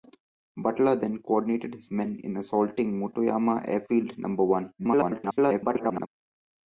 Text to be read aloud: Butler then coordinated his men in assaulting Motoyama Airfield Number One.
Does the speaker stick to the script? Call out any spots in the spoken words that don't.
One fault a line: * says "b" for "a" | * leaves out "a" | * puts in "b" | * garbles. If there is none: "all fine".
* garbles